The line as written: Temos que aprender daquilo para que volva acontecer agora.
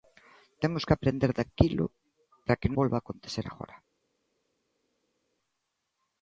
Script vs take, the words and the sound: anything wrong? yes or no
no